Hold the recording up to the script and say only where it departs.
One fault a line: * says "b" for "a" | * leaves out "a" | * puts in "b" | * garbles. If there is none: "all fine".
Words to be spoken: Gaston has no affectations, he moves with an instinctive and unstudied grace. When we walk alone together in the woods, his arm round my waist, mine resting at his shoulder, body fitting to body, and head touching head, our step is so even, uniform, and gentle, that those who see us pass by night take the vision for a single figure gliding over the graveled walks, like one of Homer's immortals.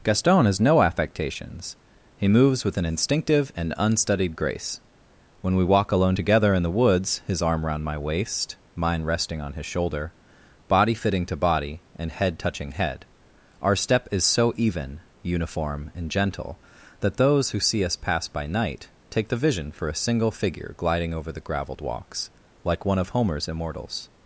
* says "on" for "at"